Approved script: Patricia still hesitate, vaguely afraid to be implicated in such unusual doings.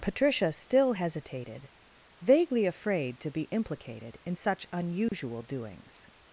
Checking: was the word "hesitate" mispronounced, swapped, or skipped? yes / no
yes